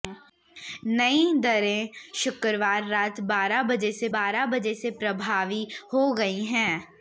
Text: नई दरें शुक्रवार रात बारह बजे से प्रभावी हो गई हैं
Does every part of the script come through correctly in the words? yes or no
no